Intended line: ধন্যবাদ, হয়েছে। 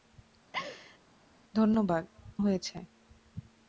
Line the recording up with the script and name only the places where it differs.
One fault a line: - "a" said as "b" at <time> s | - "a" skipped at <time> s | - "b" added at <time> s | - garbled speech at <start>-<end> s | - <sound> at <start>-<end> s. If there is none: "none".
- laugh at 0.5-1.0 s